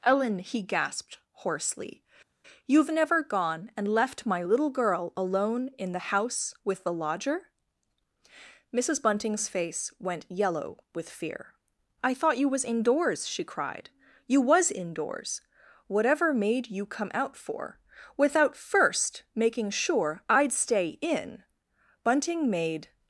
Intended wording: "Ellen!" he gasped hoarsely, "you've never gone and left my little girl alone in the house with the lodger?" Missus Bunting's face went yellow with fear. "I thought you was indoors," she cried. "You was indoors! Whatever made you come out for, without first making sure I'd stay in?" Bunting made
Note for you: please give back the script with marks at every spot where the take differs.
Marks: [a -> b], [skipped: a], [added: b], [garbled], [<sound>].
"Ellen!" he gasped hoarsely, "you've never gone and left my little girl alone in the house with the lodger?" Missus Bunting's face went yellow with fear. "I thought you was indoors," she cried. "You was indoors! Whatever made you come out for, without first making sure I'd stay in?" Bunting made